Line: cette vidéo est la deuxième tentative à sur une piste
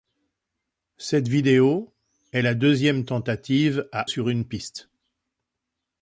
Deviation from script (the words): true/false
false